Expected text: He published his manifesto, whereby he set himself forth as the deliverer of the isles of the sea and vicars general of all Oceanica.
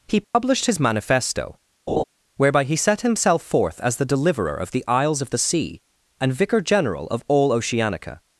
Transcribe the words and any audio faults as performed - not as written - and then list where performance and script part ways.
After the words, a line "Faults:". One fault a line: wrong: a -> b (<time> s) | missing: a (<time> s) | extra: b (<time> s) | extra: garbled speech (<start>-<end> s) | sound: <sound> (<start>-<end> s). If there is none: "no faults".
He published his manifesto, whereby he set himself forth as the deliverer of the isles of the sea and vicar general of all Oceanica.
Faults:
sound: dropout (0.2-0.3 s)
sound: laugh (1.9-2.0 s)
wrong: vicars -> vicar (6.3 s)